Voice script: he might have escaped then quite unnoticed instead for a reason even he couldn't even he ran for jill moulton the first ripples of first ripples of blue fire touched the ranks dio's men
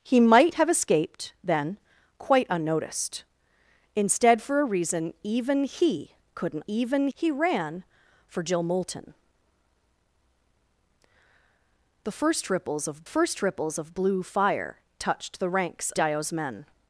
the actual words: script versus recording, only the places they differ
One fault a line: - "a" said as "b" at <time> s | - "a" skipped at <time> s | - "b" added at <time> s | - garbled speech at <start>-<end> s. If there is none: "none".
none